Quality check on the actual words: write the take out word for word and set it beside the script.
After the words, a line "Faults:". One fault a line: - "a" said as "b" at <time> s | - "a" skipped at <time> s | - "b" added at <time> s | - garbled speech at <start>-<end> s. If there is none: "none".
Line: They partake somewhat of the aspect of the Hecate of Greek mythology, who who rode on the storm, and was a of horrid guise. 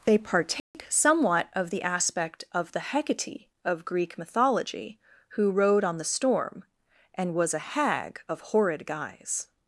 They partake somewhat of the aspect of the Hecate of Greek mythology, who rode on the storm, and was a hag of horrid guise.
Faults:
- "who" skipped at 5.5 s
- "hag" added at 7.6 s